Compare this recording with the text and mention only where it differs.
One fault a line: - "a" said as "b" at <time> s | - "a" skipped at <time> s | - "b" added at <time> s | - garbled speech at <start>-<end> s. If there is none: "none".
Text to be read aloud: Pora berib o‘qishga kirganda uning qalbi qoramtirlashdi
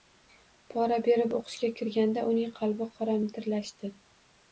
none